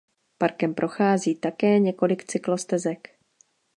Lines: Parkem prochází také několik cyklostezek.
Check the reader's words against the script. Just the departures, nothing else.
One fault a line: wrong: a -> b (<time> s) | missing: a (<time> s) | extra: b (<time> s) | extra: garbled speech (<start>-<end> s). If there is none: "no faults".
no faults